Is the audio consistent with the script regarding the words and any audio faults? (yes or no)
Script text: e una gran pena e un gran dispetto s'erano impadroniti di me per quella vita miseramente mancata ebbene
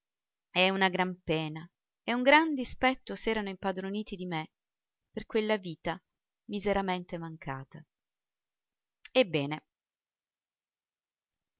yes